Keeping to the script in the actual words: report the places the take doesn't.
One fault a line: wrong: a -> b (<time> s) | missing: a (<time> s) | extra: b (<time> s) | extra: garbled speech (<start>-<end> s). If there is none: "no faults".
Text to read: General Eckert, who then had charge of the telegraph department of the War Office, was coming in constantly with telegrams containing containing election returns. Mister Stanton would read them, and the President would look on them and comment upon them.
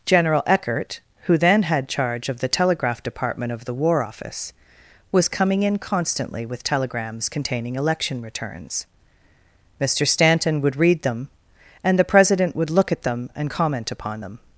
missing: containing (7.8 s)
wrong: on -> at (12.9 s)